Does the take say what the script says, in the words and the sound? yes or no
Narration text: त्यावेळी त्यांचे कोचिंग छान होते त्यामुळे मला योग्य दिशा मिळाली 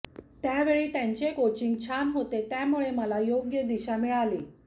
yes